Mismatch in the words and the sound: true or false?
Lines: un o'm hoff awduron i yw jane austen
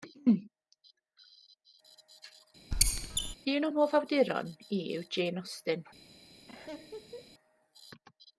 true